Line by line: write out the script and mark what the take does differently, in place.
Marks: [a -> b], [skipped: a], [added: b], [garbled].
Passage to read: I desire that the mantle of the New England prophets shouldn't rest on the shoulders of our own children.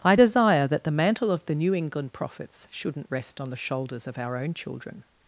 I desire that the mantle of the New England prophets shouldn't rest on the shoulders of our own children.